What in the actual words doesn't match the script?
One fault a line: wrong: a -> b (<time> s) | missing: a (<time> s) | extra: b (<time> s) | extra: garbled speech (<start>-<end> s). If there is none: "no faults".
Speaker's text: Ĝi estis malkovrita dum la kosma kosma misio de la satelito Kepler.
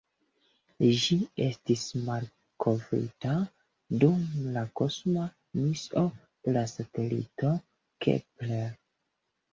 missing: kosma (5.3 s)